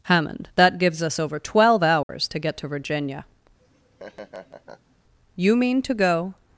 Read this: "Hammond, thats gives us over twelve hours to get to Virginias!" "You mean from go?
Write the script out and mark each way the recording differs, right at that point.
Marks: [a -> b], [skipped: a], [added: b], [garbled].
"Hammond, [thats -> that] gives us over twelve hours to get to [Virginias!" -> Virginia] "You mean [from -> to] go?